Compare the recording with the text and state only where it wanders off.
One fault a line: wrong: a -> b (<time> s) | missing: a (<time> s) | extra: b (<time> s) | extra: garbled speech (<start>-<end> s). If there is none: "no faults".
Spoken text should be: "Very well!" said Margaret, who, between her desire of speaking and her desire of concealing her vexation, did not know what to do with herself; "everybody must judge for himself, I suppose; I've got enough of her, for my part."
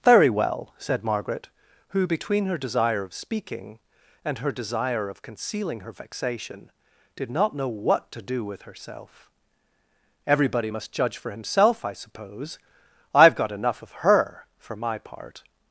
no faults